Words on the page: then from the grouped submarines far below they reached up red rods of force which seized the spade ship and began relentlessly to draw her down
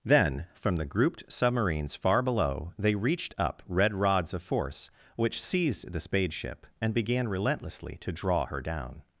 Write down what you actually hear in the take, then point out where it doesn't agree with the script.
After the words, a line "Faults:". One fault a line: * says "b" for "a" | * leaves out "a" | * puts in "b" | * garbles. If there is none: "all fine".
then from the grouped submarines far below they reached up red rods of force which seized the spade ship and began relentlessly to draw her down
Faults:
all fine